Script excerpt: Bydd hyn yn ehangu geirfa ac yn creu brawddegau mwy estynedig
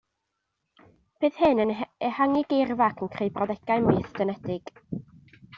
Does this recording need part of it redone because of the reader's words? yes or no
no